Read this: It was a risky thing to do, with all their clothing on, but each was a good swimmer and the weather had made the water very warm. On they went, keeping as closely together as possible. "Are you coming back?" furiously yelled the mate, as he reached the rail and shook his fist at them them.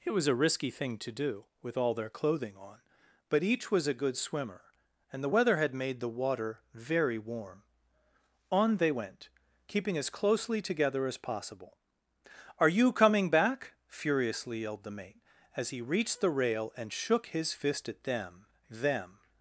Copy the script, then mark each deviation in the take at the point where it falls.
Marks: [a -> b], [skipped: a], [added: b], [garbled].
It was a risky thing to do, with all their clothing on, but each was a good swimmer and the weather had made the water very warm. On they went, keeping as closely together as possible. "Are you coming back?" furiously yelled the mate, as he reached the rail and shook his fist at them them.